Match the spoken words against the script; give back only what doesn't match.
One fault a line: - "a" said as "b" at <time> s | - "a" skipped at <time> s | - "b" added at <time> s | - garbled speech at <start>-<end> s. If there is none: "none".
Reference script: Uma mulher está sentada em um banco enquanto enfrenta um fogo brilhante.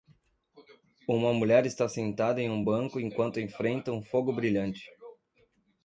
none